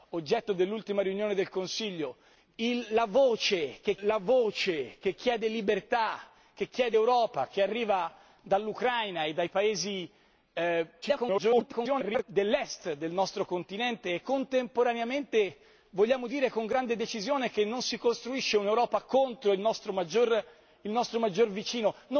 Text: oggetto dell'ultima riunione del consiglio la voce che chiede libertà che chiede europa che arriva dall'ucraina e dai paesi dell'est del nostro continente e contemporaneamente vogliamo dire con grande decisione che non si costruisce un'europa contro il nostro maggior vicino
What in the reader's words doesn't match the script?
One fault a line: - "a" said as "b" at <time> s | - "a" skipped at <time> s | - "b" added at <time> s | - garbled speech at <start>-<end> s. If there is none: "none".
- "la voce che" added at 4.0 s
- garbled speech at 11.0-12.2 s